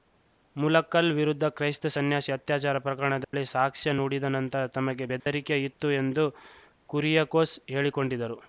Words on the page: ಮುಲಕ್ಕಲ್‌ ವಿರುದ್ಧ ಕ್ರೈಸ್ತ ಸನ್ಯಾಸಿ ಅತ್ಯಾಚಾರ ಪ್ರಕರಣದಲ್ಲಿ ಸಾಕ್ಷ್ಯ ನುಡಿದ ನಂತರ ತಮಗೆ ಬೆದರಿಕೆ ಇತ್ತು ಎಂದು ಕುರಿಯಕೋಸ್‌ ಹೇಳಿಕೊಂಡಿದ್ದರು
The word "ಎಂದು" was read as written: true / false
true